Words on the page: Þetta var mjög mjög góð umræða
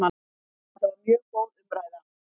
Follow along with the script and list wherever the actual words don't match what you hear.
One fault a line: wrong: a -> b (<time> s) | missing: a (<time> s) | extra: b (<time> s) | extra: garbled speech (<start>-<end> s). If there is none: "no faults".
missing: mjög (1.2 s)